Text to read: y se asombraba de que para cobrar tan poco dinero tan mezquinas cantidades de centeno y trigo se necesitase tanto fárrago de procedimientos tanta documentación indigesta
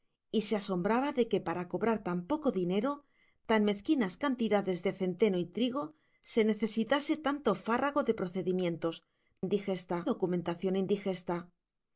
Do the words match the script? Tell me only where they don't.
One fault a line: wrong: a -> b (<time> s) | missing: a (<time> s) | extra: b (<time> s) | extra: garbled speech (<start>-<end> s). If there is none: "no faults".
wrong: tanta -> indigesta (9.5 s)